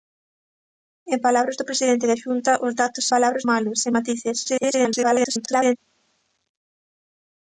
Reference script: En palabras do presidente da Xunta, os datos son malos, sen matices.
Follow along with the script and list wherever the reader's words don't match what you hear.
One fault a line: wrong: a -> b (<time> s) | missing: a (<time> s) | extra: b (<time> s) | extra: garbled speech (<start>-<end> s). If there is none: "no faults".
wrong: son -> palabras (3.1 s)
extra: garbled speech (4.4-5.8 s)